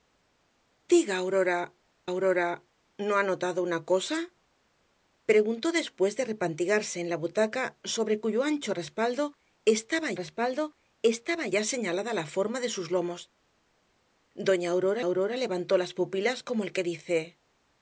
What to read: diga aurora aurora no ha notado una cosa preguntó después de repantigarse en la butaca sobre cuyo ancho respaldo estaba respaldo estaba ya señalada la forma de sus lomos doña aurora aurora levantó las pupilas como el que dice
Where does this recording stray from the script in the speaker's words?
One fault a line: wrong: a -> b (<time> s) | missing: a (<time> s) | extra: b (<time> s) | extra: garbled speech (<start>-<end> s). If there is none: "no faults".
no faults